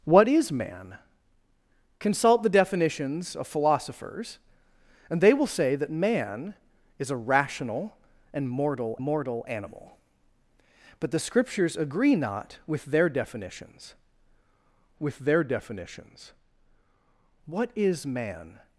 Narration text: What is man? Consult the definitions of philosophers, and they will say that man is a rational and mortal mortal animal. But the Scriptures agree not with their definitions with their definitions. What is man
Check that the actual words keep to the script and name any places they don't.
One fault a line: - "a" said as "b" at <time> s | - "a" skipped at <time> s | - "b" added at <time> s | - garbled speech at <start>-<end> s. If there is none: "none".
none